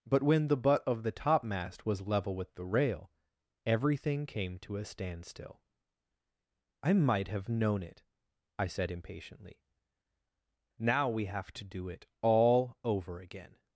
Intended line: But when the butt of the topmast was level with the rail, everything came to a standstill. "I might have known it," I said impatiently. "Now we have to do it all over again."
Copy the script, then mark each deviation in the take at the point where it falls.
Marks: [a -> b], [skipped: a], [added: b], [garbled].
But when the butt of the topmast was level with the rail, everything came to a standstill. "I might have known it," I said impatiently. "Now we have to do it all over again."